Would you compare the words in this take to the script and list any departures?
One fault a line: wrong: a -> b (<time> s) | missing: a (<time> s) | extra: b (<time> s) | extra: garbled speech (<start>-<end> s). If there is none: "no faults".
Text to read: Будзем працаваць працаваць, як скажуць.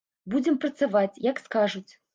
missing: працаваць (1.2 s)